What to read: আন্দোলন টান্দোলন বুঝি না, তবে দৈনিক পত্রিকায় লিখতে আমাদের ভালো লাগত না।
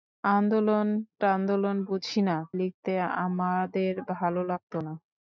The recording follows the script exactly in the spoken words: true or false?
false